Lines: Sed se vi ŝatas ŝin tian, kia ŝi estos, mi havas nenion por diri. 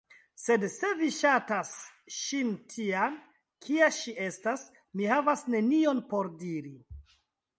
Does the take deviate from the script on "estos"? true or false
true